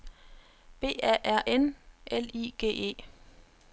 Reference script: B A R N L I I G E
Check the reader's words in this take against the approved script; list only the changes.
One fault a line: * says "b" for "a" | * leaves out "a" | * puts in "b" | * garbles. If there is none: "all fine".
* leaves out "I"